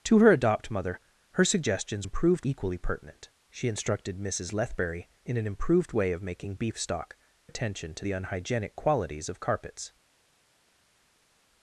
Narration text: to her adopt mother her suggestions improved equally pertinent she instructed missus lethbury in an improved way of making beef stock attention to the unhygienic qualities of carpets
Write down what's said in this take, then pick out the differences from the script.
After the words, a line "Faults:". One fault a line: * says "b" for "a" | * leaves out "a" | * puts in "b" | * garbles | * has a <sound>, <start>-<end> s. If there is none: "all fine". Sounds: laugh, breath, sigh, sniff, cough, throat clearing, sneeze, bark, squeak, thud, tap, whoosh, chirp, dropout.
to her adopt mother her suggestions improved equally pertinent she instructed missus lethbury in an improved way of making beef stock attention to the unhygienic qualities of carpets
Faults:
all fine